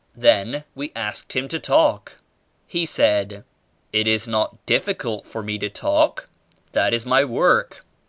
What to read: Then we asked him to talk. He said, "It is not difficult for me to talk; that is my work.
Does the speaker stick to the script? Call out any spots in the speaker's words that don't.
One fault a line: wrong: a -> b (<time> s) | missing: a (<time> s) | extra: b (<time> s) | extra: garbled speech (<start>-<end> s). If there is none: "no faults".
no faults